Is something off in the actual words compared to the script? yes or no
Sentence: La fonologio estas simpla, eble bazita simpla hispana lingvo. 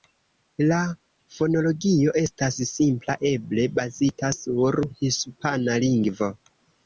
yes